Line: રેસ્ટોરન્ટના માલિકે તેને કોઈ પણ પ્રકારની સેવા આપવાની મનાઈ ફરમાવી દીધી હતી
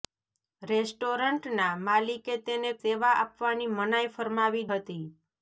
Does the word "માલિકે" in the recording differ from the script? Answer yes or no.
no